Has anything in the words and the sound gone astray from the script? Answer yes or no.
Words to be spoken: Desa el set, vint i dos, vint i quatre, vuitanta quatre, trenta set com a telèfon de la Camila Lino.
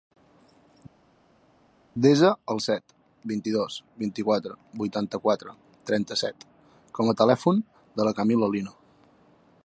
no